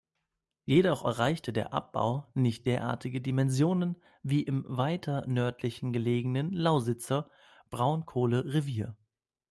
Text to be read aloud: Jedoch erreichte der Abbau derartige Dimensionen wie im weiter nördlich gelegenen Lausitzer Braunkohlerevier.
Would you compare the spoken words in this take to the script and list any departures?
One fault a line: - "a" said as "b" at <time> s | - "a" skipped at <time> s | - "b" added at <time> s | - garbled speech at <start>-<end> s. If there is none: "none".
- "nicht" added at 2.3 s